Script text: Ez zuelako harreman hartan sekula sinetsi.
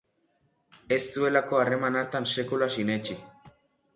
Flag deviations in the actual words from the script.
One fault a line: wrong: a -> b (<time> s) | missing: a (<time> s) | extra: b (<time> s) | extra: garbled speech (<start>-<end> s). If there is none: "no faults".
no faults